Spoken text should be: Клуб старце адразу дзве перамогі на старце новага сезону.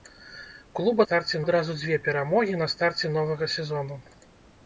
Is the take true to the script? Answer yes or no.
yes